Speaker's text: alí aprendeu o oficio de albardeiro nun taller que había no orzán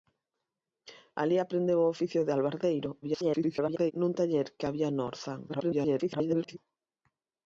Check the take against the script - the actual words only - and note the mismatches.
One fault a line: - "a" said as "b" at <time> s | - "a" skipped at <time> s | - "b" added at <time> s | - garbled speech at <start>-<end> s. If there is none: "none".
- garbled speech at 3.0-3.9 s
- garbled speech at 5.5-6.6 s